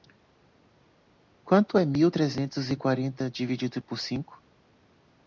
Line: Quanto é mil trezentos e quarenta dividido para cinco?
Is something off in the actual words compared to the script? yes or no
yes